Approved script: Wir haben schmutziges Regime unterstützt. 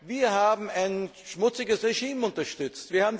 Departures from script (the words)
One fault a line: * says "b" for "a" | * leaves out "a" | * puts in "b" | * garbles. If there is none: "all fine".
* puts in "ein"